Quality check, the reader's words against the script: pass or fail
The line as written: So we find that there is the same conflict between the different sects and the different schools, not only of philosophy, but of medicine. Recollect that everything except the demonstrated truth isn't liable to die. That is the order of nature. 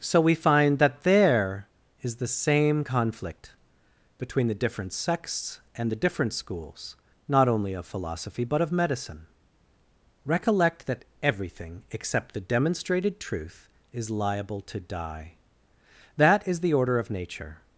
fail